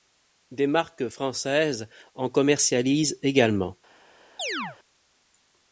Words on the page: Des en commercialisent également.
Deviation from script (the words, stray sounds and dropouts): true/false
true